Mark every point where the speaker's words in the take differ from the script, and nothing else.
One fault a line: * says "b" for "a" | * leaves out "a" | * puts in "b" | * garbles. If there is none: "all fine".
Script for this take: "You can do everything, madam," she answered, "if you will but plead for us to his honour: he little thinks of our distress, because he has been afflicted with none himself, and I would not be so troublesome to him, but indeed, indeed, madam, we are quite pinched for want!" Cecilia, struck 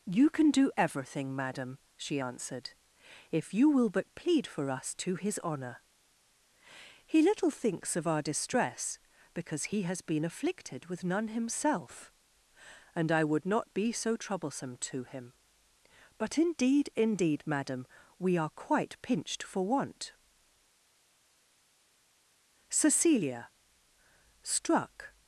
all fine